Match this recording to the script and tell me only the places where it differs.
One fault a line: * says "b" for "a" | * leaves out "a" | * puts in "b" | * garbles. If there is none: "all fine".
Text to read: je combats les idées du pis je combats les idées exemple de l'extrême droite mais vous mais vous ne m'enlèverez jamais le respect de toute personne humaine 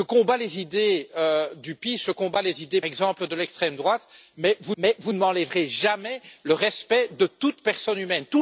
all fine